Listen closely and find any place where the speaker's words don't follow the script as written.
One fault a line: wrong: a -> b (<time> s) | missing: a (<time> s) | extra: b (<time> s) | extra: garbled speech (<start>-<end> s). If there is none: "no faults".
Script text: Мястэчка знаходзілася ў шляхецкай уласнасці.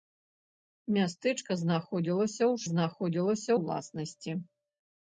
wrong: шляхецкай -> знаходзілася (2.7 s)